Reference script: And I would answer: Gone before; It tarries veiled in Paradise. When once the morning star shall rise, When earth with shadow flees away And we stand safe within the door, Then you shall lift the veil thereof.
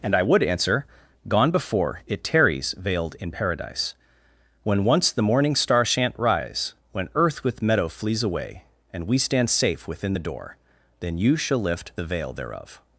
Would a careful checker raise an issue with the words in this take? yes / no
yes